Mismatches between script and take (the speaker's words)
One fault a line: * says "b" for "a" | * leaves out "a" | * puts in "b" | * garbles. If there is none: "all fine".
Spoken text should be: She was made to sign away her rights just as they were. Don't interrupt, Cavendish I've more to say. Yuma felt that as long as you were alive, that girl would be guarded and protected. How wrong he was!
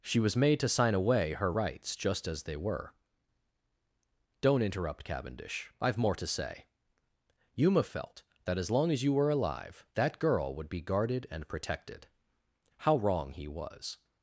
all fine